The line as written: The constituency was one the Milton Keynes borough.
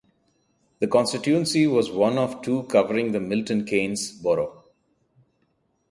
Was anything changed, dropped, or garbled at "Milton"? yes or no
no